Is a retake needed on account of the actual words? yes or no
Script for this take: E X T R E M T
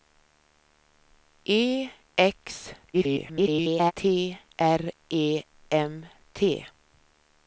yes